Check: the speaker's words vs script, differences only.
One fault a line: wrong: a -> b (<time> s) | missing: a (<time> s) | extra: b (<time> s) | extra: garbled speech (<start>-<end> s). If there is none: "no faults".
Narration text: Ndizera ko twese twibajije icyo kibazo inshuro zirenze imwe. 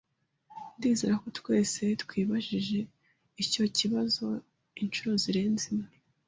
no faults